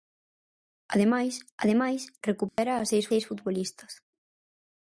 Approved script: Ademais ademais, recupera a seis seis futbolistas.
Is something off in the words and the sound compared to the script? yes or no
yes